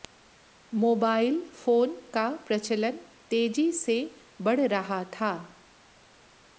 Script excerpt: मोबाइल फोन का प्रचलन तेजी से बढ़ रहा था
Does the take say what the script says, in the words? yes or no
yes